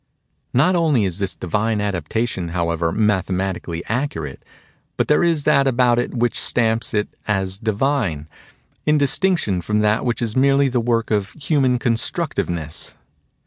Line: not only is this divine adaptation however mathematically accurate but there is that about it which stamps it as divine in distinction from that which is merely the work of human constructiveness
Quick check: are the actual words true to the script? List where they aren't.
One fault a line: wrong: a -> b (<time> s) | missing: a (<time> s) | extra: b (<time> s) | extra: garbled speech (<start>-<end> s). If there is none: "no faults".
no faults